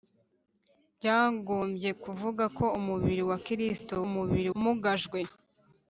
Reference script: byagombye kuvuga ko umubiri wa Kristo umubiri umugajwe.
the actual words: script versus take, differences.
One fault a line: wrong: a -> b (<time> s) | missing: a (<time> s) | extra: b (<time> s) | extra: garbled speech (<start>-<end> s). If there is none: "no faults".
no faults